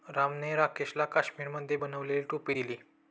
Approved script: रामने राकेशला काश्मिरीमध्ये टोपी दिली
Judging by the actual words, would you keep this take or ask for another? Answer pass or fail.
fail